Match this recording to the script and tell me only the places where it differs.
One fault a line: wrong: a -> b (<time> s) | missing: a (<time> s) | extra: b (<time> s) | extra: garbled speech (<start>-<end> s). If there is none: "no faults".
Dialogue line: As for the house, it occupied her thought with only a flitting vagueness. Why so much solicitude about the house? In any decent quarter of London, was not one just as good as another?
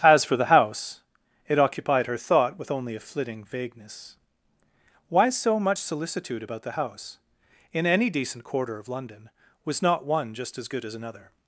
no faults